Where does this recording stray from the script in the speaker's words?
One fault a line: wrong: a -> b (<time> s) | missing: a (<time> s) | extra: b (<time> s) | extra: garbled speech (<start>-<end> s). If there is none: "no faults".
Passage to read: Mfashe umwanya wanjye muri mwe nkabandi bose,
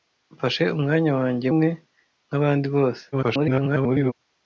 missing: muri (1.5 s)
extra: garbled speech (3.1-4.1 s)